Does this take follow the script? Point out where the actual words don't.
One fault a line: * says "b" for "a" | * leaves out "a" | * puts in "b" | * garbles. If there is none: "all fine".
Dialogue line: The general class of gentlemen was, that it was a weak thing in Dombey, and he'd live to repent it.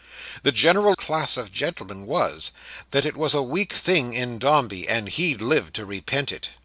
all fine